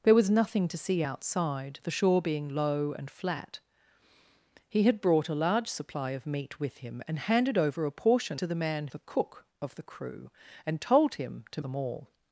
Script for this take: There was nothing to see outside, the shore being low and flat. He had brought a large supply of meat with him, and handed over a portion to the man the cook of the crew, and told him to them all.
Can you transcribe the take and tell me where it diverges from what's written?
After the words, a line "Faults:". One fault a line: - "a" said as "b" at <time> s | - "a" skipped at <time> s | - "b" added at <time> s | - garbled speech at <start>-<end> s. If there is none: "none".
There was nothing to see outside, the shore being low and flat. He had brought a large supply of meat with him, and handed over a portion to the man the cook of the crew, and told him to them all.
Faults:
none